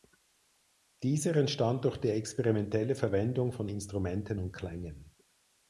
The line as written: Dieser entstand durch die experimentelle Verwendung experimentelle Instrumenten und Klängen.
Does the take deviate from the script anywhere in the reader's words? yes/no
yes